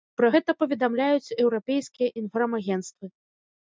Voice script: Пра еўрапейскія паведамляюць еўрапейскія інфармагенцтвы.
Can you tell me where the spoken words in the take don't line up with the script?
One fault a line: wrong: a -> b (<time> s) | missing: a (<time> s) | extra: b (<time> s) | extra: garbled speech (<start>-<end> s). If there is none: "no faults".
wrong: еўрапейскія -> гэта (0.3 s)